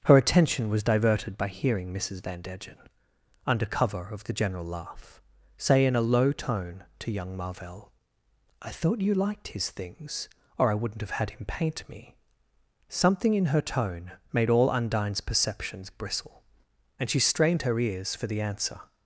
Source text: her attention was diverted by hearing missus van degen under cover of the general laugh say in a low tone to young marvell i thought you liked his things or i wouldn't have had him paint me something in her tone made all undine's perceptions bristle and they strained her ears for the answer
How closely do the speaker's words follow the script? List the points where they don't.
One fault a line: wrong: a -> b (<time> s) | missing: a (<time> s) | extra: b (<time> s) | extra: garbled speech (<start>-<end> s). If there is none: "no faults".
wrong: they -> she (17.1 s)